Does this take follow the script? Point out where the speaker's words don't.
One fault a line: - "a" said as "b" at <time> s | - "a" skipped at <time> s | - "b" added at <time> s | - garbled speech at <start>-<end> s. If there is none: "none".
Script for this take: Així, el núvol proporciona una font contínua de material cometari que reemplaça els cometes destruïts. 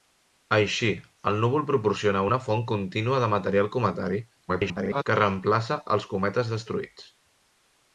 - garbled speech at 4.5-5.0 s